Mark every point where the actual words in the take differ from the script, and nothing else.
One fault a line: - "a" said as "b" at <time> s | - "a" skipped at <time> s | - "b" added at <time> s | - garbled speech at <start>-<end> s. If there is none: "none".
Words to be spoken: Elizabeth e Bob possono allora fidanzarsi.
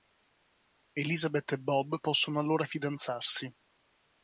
none